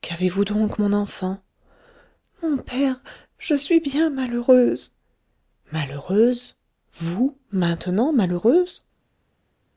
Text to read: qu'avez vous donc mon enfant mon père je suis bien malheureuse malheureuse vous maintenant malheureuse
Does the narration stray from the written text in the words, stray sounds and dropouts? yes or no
no